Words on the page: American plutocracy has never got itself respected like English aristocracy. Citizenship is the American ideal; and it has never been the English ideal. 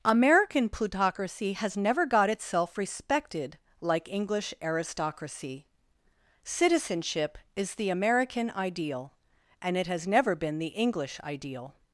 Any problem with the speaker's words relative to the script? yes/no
no